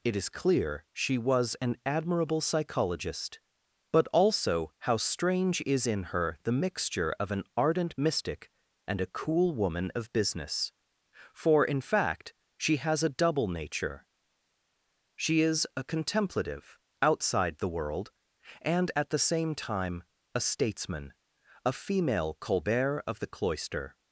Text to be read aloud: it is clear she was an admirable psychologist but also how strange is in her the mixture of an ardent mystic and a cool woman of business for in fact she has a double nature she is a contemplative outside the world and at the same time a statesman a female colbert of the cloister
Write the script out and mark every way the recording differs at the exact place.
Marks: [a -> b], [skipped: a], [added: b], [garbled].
it is clear she was an admirable psychologist but also how strange is in her the mixture of an ardent mystic and a cool woman of business for in fact she has a double nature she is a contemplative outside the world and at the same time a statesman a female colbert of the cloister